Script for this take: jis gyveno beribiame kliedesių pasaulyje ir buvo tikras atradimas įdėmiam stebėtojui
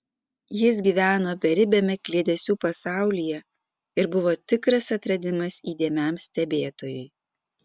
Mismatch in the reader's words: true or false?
false